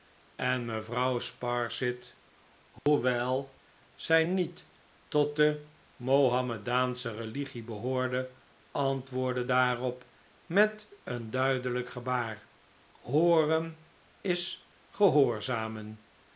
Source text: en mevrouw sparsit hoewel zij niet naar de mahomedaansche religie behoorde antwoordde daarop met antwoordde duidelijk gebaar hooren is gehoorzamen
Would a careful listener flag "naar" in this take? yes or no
yes